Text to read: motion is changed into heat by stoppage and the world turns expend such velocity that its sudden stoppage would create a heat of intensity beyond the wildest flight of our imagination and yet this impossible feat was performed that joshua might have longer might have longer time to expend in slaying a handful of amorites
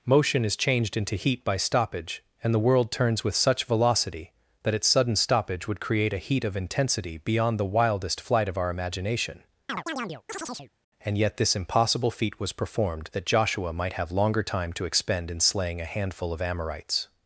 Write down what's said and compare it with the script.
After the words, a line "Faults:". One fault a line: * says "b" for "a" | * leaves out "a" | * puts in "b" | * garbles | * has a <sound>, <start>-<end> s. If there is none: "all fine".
motion is changed into heat by stoppage and the world turns with such velocity that its sudden stoppage would create a heat of intensity beyond the wildest flight of our imagination and yet this impossible feat was performed that joshua might have longer time to expend in slaying a handful of amorites
Faults:
* says "with" for "expend"
* has a chirp, 9.7-10.7 s
* leaves out "might have longer"